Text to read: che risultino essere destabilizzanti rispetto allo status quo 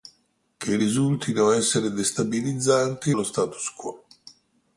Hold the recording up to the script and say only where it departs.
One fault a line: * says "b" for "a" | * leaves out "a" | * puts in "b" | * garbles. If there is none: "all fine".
* leaves out "rispetto"